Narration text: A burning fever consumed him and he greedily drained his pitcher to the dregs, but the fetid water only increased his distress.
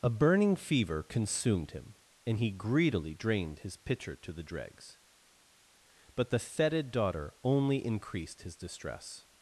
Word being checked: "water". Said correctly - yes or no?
no